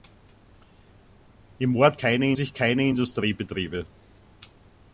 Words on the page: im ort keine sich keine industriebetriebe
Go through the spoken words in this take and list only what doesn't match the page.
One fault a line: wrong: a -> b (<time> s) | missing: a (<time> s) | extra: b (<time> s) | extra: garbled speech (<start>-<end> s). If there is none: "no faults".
no faults